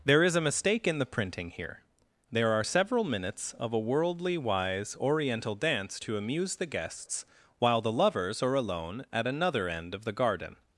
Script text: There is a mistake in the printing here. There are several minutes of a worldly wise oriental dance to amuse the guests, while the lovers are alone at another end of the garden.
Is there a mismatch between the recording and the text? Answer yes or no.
no